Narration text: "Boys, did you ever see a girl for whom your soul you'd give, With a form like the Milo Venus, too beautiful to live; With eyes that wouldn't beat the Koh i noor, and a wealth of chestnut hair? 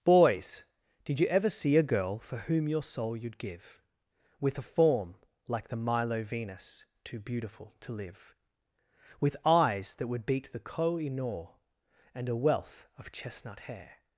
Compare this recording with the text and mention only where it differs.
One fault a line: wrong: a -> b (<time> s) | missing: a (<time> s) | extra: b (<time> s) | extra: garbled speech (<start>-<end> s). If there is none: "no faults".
wrong: wouldn't -> would (10.1 s)